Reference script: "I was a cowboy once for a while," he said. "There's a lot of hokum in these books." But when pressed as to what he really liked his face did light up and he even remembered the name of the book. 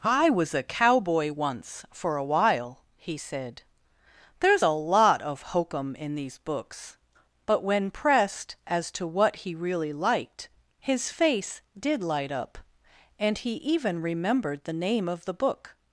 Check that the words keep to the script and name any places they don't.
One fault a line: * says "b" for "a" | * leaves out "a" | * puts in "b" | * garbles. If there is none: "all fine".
all fine